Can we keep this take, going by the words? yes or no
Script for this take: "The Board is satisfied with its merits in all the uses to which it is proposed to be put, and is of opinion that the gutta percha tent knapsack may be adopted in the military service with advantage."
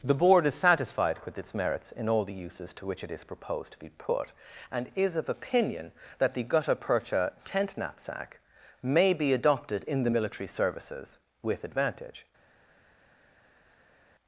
no